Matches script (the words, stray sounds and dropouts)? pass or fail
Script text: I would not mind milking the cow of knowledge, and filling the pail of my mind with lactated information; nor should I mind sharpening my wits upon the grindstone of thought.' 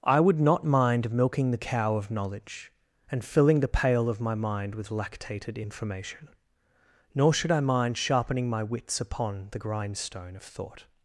pass